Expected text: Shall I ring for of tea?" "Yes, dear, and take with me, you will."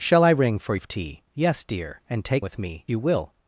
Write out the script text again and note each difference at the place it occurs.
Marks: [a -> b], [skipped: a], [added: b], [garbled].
Shall I ring for of tea?" "Yes, dear, and take with me, you will."